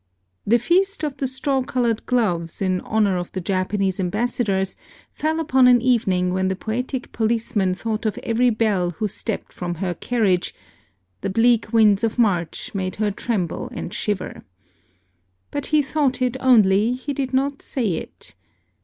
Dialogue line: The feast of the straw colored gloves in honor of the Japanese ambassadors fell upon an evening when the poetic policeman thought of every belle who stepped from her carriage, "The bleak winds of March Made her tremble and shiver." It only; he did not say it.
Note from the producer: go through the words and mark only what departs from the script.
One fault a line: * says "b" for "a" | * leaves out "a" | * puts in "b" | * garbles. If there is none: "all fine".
* puts in "But he thought"